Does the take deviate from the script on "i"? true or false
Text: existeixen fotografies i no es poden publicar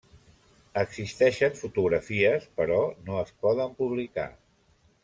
true